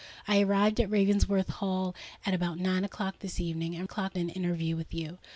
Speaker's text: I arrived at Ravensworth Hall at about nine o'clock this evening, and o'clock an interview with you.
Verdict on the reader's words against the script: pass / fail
pass